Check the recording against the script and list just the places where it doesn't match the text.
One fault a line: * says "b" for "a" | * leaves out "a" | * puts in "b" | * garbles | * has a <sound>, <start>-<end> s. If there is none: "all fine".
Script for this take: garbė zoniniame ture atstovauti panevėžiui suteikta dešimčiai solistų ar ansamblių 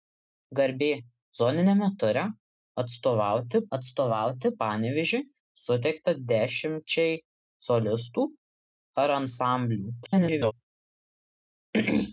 * puts in "atstovauti"
* garbles